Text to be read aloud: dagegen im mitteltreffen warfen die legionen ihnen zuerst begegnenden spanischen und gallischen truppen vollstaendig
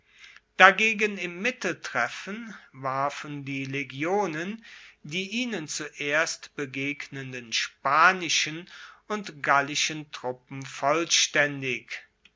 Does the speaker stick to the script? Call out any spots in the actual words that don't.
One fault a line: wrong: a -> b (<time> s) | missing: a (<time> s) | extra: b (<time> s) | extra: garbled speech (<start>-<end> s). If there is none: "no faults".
extra: die (5.0 s)